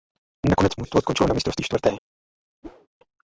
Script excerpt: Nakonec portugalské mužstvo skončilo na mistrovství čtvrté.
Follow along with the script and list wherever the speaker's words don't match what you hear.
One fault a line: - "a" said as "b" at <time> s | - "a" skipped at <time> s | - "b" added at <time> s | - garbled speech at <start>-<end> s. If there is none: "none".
- "portugalské" skipped at 0.8 s